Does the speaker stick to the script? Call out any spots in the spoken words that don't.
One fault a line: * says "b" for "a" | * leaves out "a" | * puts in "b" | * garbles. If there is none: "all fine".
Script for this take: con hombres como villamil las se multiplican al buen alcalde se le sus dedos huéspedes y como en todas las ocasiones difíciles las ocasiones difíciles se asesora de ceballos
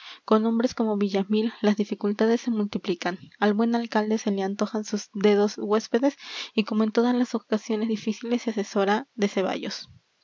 * puts in "dificultades"
* puts in "antojan"
* leaves out "las ocasiones difíciles"